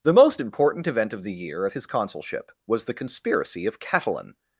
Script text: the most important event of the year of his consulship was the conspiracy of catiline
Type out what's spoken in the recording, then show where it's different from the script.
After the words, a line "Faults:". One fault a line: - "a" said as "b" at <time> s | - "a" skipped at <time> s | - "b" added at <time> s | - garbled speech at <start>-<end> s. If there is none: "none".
the most important event of the year of his consulship was the conspiracy of catiline
Faults:
none